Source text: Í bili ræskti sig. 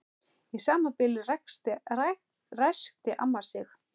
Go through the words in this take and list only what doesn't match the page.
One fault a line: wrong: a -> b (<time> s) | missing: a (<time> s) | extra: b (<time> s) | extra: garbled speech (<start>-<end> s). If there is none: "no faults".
extra: sama (0.7 s)
extra: amma (3.3 s)